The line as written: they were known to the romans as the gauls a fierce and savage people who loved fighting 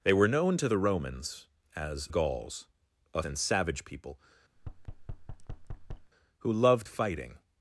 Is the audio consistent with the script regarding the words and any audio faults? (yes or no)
no